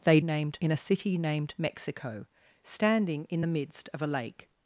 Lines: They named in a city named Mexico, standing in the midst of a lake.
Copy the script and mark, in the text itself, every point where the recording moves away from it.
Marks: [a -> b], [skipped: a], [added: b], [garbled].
They named in a city named Mexico, standing in the midst of a lake.